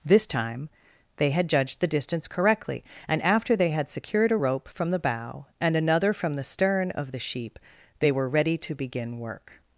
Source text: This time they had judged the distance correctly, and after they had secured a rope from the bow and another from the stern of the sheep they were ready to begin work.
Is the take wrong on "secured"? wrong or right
right